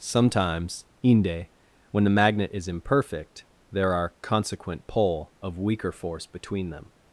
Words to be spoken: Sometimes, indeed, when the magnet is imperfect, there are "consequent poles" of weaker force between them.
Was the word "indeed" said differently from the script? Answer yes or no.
yes